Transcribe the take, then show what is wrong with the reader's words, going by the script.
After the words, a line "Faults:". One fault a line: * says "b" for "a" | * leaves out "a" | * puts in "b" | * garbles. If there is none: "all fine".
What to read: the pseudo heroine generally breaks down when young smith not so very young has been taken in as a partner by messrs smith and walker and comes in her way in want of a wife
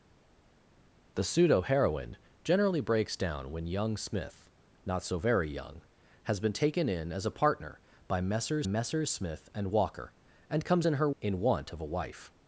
the pseudo heroine generally breaks down when young smith not so very young has been taken in as a partner by messrs messrs smith and walker and comes in her in want of a wife
Faults:
* puts in "messrs"
* leaves out "way"